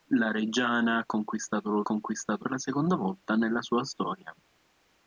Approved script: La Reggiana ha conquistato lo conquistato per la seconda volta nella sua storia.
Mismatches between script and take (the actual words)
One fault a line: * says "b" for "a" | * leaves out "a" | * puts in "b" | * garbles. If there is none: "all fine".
all fine